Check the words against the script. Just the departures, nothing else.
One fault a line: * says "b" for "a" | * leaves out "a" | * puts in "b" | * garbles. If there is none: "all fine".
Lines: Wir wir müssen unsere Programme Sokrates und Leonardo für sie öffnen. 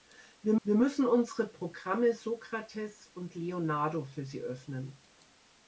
all fine